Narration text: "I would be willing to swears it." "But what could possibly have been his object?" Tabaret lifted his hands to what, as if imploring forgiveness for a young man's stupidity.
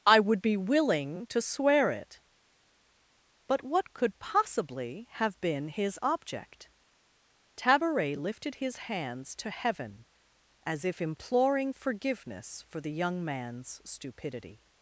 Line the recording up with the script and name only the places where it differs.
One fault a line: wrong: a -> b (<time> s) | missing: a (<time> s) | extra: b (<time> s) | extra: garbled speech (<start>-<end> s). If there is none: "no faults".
wrong: swears -> swear (1.4 s)
wrong: what -> heaven (9.5 s)
wrong: a -> the (12.8 s)